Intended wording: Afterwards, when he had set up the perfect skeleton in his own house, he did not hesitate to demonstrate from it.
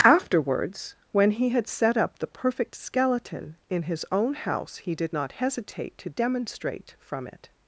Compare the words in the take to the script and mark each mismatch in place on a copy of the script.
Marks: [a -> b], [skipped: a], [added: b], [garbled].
Afterwards, when he had set up the perfect skeleton in his own house, he did not hesitate to demonstrate from it.